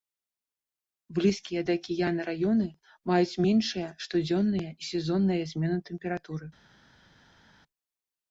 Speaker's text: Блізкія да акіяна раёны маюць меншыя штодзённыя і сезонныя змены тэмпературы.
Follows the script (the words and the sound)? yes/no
yes